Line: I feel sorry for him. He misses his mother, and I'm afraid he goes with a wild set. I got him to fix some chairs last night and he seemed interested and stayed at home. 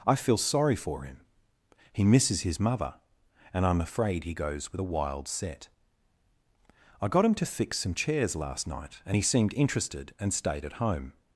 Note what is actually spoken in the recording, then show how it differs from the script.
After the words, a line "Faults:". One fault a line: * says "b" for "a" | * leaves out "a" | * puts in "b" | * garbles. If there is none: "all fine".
I feel sorry for him. He misses his mother, and I'm afraid he goes with a wild set. I got him to fix some chairs last night and he seemed interested and stayed at home.
Faults:
all fine